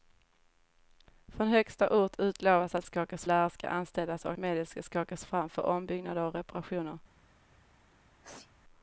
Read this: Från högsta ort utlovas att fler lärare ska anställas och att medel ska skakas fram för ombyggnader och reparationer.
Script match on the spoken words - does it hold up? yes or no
no